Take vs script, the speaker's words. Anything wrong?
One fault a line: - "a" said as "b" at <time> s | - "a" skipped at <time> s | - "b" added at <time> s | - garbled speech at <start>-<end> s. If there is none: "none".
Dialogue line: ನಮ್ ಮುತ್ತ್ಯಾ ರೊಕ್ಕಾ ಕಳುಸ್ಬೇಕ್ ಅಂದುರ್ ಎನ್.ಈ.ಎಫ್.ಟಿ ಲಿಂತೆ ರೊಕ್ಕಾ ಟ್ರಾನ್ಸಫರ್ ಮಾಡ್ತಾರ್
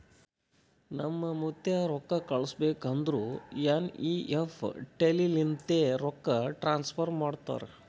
none